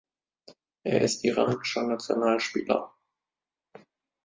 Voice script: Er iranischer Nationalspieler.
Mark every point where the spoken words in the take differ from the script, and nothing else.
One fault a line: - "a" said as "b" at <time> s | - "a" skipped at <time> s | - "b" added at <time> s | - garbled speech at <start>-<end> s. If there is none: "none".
- "ist" added at 1.0 s